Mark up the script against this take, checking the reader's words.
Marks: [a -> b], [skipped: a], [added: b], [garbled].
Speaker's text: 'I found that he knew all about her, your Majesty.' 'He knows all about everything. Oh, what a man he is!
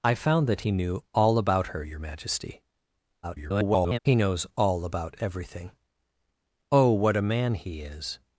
'I found that he knew all about her, your Majesty.' [garbled] 'He knows all about everything. Oh, what a man he is!